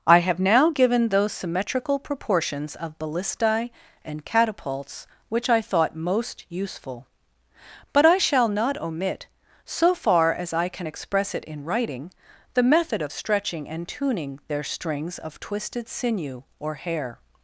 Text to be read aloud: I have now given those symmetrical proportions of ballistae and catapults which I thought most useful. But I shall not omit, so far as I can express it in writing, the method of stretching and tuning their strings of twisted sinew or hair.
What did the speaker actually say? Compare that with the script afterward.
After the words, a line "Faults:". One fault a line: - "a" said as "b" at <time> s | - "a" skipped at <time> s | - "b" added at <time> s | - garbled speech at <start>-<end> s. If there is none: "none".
I have now given those symmetrical proportions of ballistae and catapults which I thought most useful. But I shall not omit, so far as I can express it in writing, the method of stretching and tuning their strings of twisted sinew or hair.
Faults:
none